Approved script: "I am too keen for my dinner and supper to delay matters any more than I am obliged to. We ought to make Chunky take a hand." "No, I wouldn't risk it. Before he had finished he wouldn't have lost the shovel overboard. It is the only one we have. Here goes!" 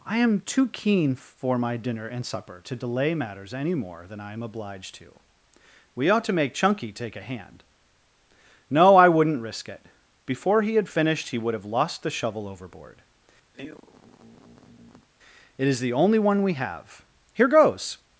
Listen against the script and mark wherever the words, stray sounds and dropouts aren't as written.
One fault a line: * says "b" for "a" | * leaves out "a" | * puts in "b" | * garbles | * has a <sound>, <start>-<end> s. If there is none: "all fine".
* says "would" for "wouldn't"
* has a sigh, 13.5-15.1 s